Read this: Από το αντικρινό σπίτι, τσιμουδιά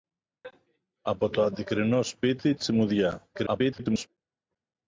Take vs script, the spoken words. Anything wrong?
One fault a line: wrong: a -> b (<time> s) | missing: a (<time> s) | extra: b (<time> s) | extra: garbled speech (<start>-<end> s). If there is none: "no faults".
extra: garbled speech (3.3-4.1 s)